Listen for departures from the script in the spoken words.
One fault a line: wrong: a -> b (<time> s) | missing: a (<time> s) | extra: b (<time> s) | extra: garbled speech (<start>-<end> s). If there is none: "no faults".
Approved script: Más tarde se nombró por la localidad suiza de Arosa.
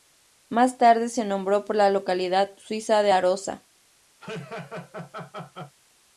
no faults